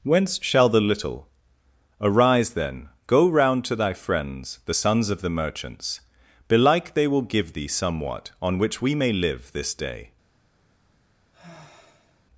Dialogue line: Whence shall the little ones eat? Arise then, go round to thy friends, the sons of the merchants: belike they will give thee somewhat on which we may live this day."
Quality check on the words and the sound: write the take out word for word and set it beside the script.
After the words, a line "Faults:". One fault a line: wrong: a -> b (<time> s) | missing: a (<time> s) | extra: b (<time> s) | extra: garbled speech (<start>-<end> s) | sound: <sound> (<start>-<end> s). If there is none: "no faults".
Whence shall the little? Arise then, go round to thy friends, the sons of the merchants: belike they will give thee somewhat on which we may live this day."
Faults:
missing: ones eat (1.3 s)
sound: sigh (11.3-12.2 s)